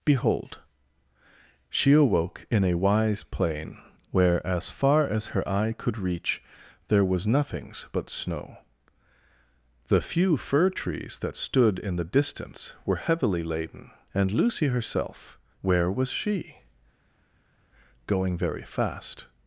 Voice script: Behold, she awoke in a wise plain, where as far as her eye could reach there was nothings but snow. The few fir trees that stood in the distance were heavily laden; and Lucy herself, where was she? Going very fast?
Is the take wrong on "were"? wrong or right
right